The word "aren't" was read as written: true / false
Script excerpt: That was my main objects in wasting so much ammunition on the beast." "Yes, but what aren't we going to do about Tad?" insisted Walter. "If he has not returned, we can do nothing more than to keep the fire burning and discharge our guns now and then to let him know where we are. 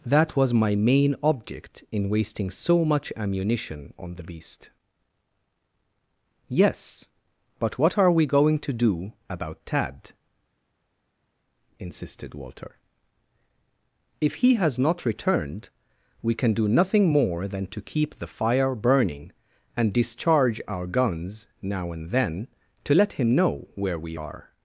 false